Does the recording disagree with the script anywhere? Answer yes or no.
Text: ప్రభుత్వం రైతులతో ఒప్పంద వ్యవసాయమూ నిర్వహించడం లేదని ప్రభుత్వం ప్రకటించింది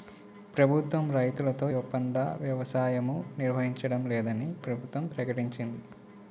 no